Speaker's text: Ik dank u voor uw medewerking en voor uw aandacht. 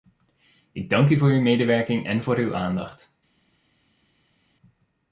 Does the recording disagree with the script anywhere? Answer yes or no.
no